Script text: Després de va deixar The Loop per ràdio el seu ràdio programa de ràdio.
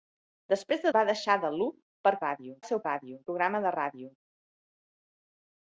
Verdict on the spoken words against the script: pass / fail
pass